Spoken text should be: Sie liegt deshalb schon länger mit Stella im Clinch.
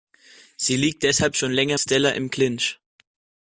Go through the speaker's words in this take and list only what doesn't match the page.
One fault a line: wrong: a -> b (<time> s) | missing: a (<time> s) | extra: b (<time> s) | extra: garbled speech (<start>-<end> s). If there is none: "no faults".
missing: mit (1.8 s)